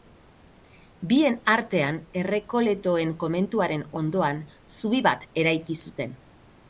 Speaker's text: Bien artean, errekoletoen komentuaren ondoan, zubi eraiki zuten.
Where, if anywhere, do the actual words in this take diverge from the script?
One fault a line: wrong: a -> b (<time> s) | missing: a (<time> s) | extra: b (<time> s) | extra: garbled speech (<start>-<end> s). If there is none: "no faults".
extra: bat (5.1 s)